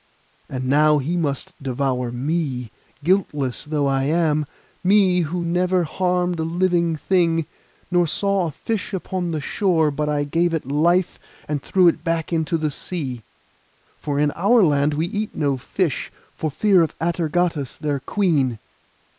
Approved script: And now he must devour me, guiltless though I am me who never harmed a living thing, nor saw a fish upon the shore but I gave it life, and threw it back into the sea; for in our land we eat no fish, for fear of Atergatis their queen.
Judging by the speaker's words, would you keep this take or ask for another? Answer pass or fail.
pass